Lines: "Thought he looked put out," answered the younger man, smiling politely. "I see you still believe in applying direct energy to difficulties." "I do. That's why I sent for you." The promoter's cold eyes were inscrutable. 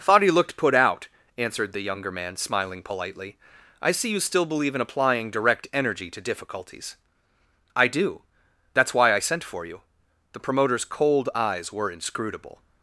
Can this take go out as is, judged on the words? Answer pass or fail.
pass